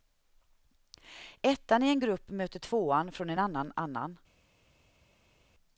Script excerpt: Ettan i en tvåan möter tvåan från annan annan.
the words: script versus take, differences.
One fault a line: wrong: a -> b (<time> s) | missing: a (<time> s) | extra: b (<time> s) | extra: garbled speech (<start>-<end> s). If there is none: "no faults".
wrong: tvåan -> grupp (2.0 s)
extra: en (3.3 s)